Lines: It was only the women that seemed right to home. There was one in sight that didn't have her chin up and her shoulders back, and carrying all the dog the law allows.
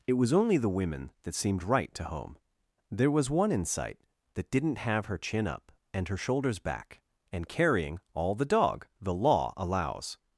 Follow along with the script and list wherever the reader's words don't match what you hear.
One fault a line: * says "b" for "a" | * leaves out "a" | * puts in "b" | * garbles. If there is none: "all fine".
all fine